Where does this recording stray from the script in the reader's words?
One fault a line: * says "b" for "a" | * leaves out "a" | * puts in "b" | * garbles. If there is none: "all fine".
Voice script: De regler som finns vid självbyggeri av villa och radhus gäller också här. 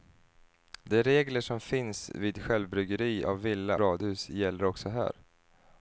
* leaves out "och"